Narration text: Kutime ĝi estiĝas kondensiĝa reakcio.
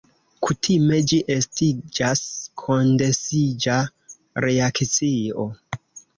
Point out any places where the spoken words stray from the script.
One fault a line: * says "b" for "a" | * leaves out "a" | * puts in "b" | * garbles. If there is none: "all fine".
all fine